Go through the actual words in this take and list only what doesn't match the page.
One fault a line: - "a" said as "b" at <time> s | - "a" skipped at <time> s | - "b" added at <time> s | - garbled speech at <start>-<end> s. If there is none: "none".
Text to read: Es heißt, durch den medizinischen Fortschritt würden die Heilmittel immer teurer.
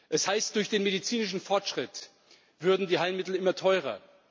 none